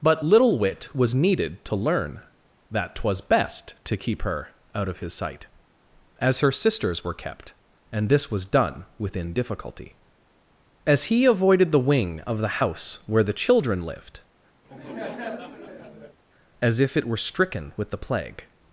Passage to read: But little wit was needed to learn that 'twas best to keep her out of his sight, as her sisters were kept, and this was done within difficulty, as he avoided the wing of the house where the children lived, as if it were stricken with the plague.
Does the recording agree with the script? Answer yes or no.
yes